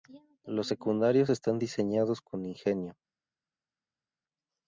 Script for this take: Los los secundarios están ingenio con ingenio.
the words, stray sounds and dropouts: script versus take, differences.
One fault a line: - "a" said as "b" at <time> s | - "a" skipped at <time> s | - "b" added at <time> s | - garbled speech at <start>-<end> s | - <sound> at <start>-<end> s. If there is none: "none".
- "los" skipped at 0.7 s
- "ingenio" said as "diseñados" at 1.6 s